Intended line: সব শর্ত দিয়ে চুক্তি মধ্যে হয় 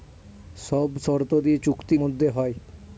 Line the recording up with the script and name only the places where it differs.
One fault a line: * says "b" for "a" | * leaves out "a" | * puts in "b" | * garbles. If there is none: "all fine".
all fine